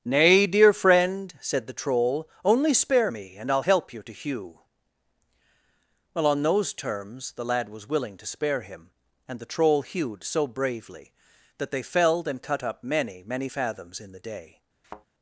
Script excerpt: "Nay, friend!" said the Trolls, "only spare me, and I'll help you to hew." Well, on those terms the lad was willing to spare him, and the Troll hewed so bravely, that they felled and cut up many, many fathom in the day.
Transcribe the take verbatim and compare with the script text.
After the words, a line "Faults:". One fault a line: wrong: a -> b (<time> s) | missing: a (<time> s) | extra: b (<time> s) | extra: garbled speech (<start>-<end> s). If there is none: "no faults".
"Nay, dear friend!" said the Troll, "only spare me, and I'll help you to hew." Well, on those terms the lad was willing to spare him, and the Troll hewed so bravely, that they felled and cut up many, many fathoms in the day.
Faults:
extra: dear (0.5 s)
wrong: Trolls -> Troll (1.7 s)
wrong: fathom -> fathoms (13.5 s)